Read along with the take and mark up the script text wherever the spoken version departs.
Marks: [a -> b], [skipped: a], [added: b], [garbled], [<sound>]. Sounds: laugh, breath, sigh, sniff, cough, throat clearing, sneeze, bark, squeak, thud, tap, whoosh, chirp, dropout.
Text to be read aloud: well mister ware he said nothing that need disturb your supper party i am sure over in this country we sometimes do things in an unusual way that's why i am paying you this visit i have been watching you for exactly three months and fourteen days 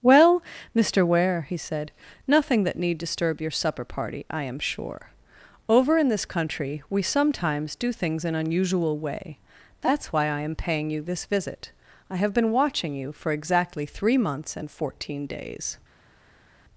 well mister ware he said nothing that need disturb your supper party i am sure over in this country we sometimes do things in [skipped: an] unusual way that's why i am paying you this visit i have been watching you for exactly three months and fourteen days